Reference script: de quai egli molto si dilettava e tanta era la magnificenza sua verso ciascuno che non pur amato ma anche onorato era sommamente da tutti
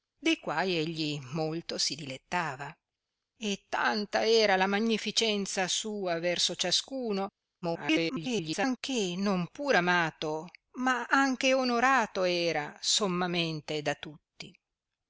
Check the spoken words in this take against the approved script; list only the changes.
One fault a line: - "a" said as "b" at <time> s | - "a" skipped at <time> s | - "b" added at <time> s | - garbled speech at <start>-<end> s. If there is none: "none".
- garbled speech at 7.6-8.8 s